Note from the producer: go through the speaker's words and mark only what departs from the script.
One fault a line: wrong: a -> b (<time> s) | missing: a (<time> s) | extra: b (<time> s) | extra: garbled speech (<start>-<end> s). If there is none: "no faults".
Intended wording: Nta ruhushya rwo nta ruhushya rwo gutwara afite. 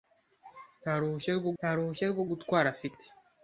no faults